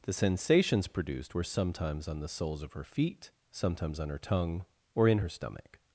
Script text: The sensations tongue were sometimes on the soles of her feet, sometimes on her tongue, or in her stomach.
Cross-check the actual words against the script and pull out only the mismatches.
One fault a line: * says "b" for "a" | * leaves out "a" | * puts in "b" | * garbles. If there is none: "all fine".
* says "produced" for "tongue"